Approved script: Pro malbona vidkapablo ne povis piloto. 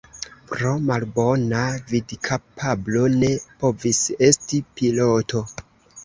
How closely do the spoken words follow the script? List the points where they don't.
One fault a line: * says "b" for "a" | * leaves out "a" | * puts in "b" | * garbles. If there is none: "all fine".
* puts in "esti"